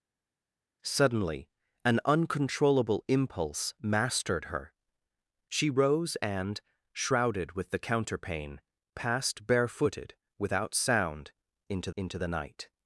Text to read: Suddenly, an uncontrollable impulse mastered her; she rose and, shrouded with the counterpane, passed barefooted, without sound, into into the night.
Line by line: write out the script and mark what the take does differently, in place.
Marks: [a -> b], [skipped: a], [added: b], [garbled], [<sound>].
Suddenly, an uncontrollable impulse mastered her; she rose and, shrouded with the counterpane, passed barefooted, without sound, into into the night.